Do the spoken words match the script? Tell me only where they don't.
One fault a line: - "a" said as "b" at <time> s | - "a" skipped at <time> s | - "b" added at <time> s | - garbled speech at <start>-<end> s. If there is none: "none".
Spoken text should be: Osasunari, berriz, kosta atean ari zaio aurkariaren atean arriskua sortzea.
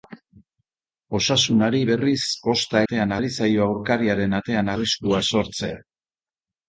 none